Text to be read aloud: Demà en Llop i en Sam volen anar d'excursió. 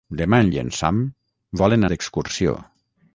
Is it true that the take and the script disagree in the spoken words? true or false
true